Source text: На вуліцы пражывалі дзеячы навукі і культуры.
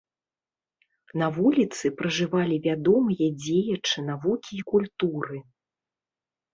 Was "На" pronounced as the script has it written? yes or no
yes